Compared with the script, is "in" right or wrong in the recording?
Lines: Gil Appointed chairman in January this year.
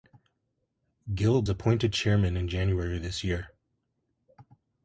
right